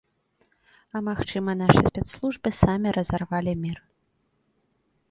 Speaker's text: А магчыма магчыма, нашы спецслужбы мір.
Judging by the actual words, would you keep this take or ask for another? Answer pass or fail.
fail